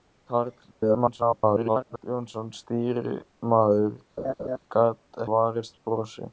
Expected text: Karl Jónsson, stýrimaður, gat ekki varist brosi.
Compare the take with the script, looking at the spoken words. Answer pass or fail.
fail